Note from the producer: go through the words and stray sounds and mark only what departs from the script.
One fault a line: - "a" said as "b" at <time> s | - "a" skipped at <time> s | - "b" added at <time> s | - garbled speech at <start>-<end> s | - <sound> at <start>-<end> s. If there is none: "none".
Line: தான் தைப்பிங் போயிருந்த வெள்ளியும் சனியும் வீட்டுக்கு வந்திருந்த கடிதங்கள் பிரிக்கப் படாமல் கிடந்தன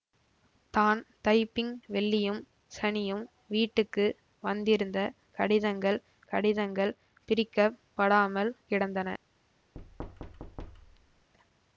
- "போயிருந்த" skipped at 1.7 s
- "கடிதங்கள்" added at 6.3 s
- thud at 9.7-11.3 s